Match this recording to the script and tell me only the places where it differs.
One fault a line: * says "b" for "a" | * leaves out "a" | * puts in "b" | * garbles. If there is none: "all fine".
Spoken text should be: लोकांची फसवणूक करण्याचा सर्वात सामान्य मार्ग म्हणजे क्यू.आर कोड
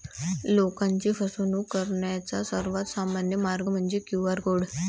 all fine